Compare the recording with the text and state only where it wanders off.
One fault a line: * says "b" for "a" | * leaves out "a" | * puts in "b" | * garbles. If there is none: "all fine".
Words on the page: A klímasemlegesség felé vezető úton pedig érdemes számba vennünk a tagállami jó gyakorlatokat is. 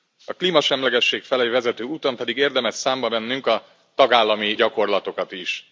* leaves out "jó"